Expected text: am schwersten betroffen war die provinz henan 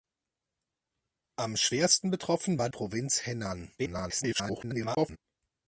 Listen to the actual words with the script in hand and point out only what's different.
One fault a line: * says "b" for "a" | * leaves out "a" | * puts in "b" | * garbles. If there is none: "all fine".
* leaves out "die"
* garbles